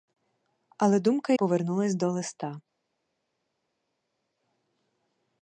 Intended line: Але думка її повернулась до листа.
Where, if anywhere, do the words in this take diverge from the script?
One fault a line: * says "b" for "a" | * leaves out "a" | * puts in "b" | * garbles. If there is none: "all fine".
* leaves out "її"